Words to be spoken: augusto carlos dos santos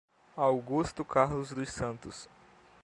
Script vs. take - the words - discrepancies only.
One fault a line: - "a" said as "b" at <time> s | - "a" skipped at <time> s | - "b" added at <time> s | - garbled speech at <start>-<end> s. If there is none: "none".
none